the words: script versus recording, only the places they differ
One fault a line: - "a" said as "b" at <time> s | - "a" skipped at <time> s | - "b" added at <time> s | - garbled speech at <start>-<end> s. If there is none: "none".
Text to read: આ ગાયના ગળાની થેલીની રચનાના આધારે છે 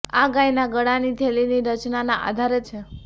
none